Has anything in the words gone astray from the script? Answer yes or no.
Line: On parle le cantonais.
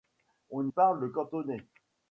no